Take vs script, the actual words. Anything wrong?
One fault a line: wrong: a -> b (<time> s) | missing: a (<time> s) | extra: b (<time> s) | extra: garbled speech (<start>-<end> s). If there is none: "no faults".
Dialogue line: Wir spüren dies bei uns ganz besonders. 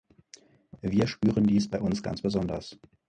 no faults